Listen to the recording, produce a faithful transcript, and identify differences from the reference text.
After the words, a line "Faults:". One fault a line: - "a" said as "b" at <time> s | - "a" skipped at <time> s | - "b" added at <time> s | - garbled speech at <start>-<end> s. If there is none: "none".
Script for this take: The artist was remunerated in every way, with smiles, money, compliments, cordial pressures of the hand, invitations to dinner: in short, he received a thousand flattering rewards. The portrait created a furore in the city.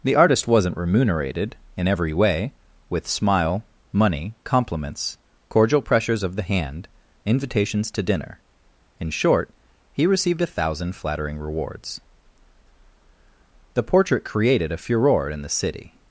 The artist wasn't remunerated in every way, with smile, money, compliments, cordial pressures of the hand, invitations to dinner: in short, he received a thousand flattering rewards. The portrait created a furore in the city.
Faults:
- "was" said as "wasn't" at 0.5 s
- "smiles" said as "smile" at 3.1 s